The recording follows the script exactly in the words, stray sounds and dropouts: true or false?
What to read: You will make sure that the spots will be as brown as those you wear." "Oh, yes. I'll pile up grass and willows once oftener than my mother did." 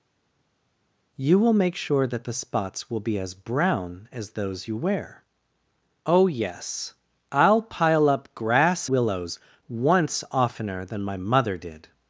false